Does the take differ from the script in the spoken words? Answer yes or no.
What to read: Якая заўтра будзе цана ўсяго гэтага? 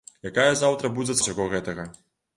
yes